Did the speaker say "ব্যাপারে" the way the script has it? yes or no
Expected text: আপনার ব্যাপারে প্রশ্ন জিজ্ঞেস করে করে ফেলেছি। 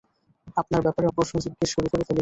yes